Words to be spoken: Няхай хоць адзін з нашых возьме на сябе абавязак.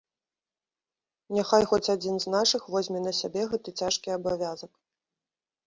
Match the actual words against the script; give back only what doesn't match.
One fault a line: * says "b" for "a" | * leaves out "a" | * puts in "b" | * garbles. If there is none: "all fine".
* puts in "гэты цяжкі"